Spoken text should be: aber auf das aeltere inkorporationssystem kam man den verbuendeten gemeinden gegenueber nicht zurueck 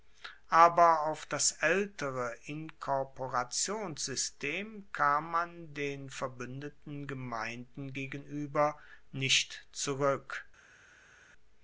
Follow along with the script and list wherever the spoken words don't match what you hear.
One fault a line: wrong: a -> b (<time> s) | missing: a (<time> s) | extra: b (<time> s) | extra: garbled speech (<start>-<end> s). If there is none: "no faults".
no faults